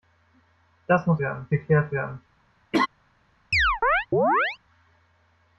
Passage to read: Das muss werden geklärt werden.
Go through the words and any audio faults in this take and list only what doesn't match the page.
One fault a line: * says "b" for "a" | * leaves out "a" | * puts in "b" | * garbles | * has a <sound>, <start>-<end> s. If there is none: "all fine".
* has a laugh, 2.7-2.9 s
* has a chirp, 3.5-4.6 s